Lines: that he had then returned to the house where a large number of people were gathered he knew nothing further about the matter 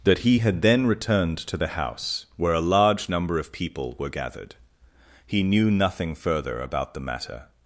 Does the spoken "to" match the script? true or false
true